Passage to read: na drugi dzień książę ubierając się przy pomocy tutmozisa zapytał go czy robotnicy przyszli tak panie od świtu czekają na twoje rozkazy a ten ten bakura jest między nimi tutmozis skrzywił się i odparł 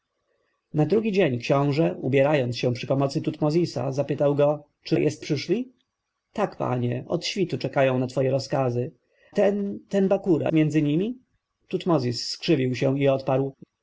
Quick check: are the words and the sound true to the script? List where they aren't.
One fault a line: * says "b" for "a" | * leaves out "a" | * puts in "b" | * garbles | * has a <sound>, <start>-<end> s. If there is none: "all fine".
* says "jest" for "robotnicy"
* leaves out "a"
* leaves out "jest"